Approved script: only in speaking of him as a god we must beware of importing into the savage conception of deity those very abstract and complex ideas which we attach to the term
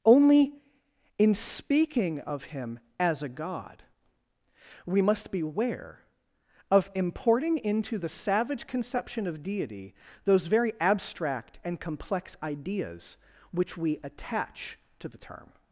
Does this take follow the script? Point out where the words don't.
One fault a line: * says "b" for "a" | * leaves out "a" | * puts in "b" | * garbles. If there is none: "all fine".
all fine